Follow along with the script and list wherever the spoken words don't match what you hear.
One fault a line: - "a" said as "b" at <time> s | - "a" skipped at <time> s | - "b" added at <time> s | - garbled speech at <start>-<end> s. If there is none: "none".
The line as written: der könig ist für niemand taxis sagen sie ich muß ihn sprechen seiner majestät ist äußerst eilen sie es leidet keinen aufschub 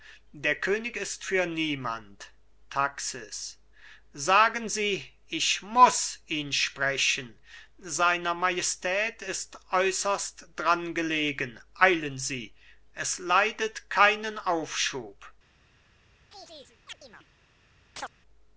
- "dran gelegen" added at 10.6 s